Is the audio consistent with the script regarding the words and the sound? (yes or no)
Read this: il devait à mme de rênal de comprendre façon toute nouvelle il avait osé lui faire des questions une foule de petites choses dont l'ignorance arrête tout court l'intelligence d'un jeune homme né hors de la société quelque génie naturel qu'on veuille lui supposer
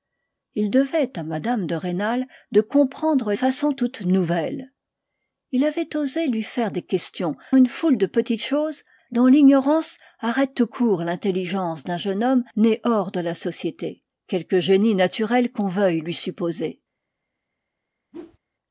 no